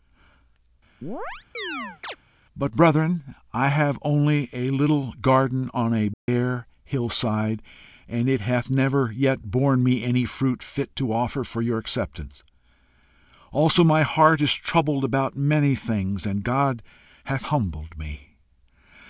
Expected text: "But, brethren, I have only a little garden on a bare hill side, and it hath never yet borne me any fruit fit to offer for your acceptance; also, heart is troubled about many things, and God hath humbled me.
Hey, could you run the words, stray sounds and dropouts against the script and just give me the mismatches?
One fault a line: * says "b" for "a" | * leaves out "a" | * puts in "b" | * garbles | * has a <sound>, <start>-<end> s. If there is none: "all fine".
* has a chirp, 1.0-2.2 s
* has a dropout, 6.1-6.3 s
* puts in "my"